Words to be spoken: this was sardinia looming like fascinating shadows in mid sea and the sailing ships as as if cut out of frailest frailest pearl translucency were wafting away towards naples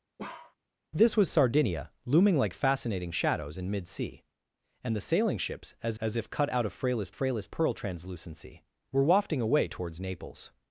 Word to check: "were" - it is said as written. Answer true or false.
true